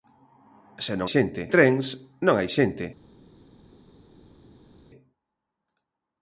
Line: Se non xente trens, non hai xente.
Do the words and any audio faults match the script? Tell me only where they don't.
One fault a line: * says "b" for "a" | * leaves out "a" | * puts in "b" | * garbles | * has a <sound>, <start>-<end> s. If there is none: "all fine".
all fine